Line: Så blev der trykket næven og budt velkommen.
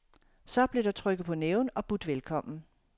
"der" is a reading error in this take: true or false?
false